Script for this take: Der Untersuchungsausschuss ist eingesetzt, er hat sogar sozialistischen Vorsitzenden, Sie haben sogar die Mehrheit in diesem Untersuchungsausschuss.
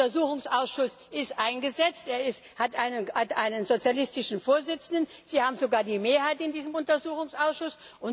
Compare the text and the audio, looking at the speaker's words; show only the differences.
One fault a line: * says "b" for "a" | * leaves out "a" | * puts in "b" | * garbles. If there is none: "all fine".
* says "einen" for "sogar"